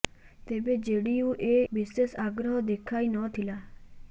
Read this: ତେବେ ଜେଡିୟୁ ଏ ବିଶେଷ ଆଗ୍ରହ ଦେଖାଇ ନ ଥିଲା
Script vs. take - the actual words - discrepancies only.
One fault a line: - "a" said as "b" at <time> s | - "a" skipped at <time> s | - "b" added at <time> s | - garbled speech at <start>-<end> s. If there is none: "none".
none